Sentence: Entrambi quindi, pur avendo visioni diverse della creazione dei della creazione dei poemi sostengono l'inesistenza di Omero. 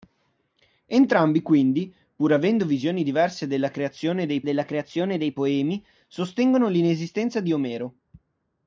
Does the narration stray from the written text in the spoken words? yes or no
no